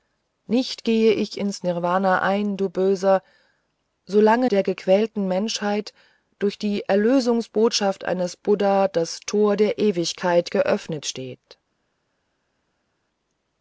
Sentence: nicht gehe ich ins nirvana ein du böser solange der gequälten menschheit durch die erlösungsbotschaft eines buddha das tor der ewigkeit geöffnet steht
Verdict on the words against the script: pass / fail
pass